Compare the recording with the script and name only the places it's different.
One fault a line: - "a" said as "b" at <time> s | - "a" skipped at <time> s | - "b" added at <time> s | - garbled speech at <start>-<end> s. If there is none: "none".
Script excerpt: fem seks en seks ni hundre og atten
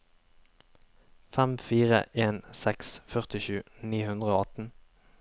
- "seks" said as "fire" at 1.7 s
- "førtisju" added at 3.2 s